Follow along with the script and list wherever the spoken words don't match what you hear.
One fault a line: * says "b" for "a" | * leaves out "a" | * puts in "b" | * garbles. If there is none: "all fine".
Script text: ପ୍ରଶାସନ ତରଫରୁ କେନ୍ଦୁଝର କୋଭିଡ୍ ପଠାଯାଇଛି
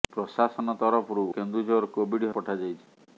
all fine